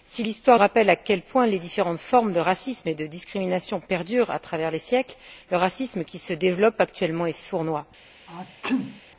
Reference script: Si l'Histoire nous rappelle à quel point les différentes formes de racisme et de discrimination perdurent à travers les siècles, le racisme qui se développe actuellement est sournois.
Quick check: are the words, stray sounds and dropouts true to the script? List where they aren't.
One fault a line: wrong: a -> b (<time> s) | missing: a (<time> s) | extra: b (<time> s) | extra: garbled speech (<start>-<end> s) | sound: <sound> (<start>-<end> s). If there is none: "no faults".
missing: nous (0.6 s)
sound: sneeze (8.3-9.0 s)